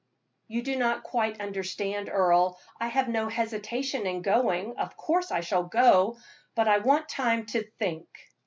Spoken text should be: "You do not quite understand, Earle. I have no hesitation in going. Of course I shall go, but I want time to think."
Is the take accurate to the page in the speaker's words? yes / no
yes